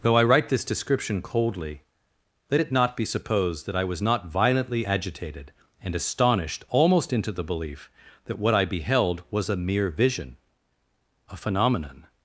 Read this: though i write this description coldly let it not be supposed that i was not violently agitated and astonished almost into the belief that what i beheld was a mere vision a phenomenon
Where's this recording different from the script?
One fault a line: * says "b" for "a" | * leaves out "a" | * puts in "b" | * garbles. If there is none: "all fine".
all fine